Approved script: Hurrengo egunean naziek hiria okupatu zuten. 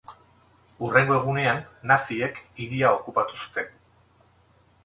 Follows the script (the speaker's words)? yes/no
yes